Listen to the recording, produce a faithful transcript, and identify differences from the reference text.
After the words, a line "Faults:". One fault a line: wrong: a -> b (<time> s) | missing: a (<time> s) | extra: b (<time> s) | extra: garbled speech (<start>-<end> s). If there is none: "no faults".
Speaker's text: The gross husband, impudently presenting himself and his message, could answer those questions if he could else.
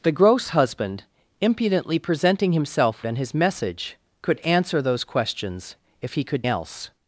The gross husband, impudently presenting himself and his message, could answer those questions if he could else.
Faults:
no faults